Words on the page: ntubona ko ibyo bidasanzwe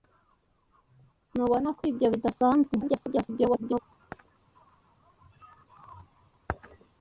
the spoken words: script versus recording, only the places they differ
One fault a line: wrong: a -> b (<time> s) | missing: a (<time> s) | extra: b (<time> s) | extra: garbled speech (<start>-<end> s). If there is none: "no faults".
extra: garbled speech (2.8-3.8 s)